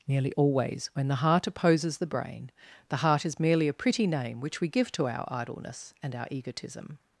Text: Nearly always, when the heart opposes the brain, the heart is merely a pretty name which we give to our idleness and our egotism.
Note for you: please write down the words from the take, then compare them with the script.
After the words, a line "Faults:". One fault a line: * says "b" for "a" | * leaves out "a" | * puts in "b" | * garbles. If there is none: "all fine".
Nearly always, when the heart opposes the brain, the heart is merely a pretty name which we give to our idleness and our egotism.
Faults:
all fine